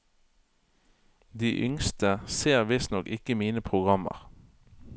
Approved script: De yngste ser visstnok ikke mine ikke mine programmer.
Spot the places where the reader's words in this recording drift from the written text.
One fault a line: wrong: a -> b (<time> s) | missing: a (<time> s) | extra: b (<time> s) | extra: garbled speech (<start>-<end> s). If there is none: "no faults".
missing: ikke mine (3.6 s)